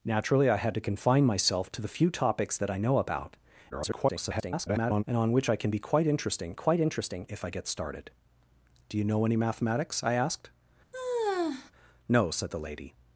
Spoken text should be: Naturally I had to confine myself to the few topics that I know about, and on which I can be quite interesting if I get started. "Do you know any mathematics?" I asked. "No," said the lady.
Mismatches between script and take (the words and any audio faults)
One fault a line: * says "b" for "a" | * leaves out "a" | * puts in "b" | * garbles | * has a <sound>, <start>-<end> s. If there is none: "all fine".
* garbles
* puts in "quite interesting"
* has a sigh, 10.9-11.7 s